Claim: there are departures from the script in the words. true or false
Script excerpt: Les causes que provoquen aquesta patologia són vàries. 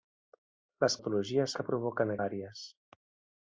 true